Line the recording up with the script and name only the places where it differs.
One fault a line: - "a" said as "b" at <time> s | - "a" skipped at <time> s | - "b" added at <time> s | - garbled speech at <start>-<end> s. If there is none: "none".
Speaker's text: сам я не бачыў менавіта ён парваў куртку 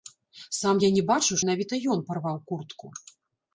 none